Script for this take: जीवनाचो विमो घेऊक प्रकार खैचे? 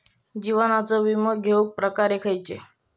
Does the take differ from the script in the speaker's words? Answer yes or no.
no